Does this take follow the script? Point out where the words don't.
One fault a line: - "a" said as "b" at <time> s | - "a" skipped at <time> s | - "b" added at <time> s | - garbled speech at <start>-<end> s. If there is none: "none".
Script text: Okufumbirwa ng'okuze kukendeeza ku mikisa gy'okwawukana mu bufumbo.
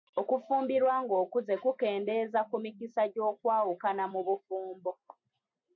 none